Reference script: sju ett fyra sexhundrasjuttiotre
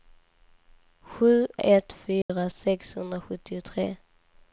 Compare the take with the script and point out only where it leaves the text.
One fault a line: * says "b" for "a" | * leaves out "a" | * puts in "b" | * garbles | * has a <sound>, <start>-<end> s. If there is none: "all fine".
* has a dropout, 2.2-2.3 s